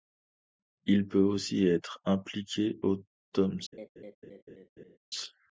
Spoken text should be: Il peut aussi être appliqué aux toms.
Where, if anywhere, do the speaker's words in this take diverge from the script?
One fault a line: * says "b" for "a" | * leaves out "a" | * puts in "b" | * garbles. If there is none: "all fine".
all fine